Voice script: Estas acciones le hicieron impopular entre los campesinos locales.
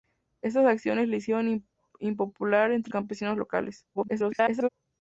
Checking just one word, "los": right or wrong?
wrong